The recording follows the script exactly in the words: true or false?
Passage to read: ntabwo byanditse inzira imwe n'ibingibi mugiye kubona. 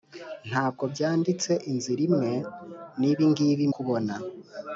false